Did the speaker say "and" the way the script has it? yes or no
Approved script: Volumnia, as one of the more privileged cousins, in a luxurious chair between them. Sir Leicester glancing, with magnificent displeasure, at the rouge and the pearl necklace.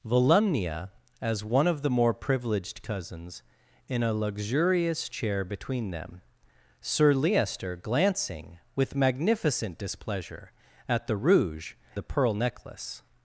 no